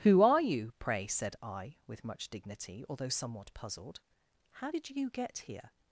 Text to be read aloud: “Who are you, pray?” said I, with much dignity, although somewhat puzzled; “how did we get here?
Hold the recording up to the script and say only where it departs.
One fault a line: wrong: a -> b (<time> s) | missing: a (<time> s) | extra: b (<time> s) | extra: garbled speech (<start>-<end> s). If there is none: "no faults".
wrong: we -> you (4.9 s)